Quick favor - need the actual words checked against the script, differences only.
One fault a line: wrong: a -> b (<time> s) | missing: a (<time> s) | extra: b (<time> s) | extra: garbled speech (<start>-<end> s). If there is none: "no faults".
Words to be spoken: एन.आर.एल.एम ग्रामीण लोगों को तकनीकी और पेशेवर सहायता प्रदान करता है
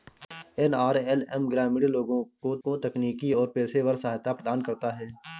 extra: को (2.6 s)